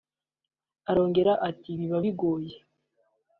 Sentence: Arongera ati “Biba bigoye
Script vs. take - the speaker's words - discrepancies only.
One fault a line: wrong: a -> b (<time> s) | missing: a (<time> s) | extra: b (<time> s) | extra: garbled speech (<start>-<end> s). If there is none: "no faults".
no faults